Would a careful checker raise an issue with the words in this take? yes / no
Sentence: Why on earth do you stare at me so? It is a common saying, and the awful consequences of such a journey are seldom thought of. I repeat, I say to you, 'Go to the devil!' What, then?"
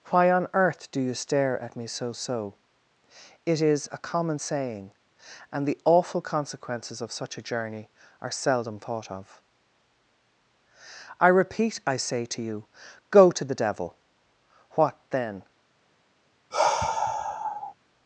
yes